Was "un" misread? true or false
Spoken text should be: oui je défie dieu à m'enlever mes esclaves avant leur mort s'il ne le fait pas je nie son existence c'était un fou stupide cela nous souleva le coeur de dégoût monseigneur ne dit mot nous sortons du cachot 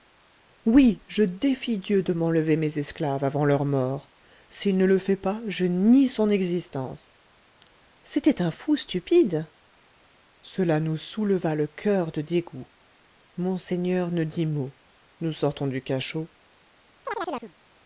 false